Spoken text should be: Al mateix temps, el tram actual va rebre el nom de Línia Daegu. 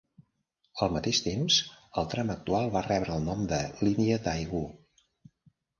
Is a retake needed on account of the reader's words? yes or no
no